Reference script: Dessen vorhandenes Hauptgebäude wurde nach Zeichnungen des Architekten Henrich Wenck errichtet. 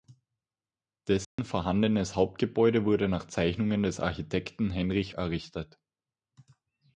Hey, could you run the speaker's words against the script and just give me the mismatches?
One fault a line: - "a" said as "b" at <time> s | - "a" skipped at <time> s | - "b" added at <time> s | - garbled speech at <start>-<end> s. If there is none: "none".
- "Wenck" skipped at 5.1 s